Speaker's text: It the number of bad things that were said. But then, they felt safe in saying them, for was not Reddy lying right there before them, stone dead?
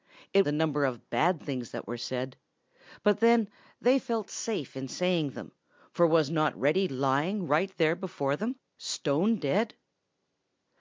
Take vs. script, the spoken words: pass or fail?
pass